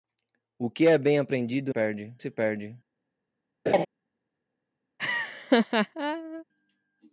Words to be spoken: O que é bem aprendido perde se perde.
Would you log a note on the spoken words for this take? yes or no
no